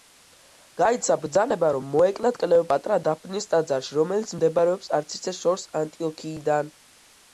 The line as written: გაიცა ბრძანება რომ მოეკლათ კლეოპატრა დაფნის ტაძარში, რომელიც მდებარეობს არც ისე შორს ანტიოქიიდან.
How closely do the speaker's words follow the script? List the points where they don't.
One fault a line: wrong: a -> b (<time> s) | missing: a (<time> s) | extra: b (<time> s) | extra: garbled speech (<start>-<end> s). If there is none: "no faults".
no faults